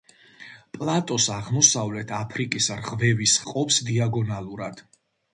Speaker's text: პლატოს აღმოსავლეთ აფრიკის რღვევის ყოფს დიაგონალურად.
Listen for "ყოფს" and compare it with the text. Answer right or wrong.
right